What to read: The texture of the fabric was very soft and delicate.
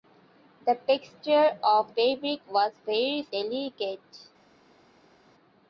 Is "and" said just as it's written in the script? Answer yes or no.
no